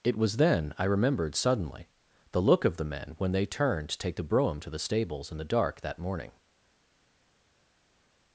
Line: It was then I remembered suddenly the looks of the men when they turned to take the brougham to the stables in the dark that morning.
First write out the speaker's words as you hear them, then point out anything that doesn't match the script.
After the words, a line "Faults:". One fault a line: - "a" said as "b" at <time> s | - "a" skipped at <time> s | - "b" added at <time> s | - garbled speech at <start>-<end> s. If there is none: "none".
It was then I remembered suddenly the look of the men when they turned to take the brougham to the stables in the dark that morning.
Faults:
- "looks" said as "look" at 2.4 s